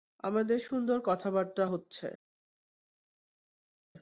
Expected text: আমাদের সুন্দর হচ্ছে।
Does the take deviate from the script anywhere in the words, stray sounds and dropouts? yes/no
yes